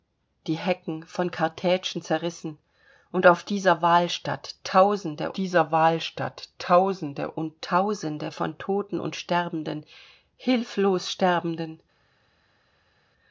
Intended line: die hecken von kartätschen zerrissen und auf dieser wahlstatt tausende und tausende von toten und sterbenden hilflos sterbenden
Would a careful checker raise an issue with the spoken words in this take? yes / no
yes